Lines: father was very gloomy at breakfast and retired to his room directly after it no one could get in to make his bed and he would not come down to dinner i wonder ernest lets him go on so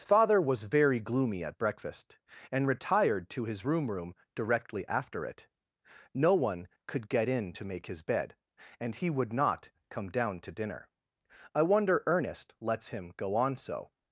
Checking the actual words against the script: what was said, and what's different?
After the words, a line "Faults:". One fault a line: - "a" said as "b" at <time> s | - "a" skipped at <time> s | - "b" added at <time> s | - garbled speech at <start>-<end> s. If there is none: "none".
father was very gloomy at breakfast and retired to his room room directly after it no one could get in to make his bed and he would not come down to dinner i wonder ernest lets him go on so
Faults:
- "room" added at 3.9 s